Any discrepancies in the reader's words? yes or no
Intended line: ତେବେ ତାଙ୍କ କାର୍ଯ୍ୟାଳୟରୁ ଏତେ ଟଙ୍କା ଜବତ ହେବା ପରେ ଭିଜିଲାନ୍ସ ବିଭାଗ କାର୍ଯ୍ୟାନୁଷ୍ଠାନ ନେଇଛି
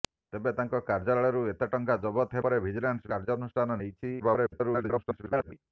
yes